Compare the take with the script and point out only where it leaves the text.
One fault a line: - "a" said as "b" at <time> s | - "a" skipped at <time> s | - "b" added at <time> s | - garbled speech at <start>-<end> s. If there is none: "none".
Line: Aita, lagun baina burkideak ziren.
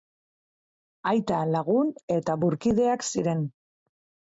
- "baina" said as "eta" at 2.2 s